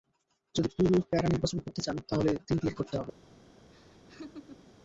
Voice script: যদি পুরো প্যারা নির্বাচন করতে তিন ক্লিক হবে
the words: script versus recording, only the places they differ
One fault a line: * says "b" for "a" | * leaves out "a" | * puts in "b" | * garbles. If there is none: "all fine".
* puts in "চান তাহলে"
* puts in "করতে"